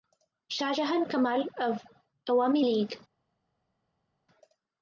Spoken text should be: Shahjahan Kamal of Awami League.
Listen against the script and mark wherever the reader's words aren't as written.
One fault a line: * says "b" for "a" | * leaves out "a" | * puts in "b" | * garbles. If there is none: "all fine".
all fine